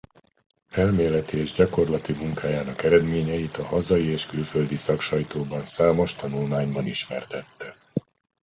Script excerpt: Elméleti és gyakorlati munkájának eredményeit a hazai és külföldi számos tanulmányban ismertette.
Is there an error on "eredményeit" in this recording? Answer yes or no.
no